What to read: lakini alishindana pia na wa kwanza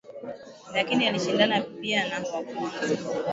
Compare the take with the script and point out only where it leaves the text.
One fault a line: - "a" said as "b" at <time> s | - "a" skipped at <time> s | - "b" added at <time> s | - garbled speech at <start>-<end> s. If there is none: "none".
none